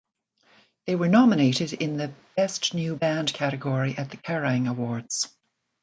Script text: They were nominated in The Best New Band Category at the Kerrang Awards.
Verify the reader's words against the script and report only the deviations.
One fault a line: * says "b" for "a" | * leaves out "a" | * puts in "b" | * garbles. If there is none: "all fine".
all fine